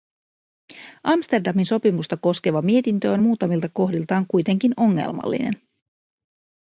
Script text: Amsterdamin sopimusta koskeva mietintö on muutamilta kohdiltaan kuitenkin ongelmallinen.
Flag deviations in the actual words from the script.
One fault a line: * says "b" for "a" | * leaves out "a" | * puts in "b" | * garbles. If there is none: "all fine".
all fine